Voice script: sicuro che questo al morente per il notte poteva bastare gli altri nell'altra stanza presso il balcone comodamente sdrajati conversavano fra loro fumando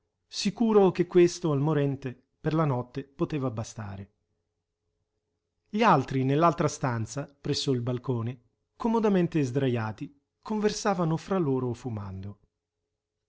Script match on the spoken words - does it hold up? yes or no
no